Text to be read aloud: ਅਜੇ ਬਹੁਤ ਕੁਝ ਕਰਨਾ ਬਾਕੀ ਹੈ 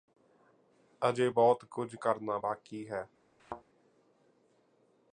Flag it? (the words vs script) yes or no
no